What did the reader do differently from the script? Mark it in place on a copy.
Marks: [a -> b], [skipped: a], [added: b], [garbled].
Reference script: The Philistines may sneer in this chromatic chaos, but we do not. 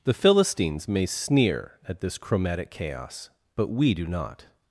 The Philistines may sneer [in -> at] this chromatic chaos, but we do not.